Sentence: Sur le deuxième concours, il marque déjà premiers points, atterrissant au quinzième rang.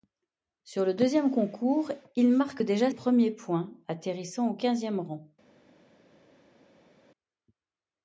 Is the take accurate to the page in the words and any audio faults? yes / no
yes